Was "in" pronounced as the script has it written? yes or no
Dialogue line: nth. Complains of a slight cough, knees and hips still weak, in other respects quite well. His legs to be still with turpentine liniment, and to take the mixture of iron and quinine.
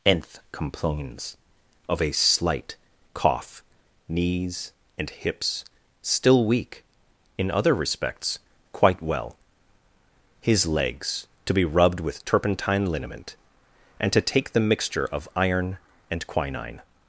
yes